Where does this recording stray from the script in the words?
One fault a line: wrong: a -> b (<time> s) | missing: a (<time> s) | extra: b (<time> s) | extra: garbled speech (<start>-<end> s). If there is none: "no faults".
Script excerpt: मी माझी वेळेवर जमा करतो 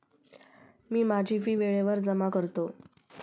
extra: फी (1.4 s)